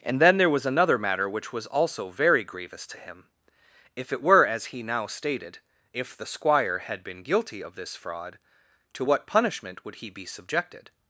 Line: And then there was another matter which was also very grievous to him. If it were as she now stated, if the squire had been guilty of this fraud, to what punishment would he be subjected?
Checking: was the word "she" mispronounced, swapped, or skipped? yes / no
yes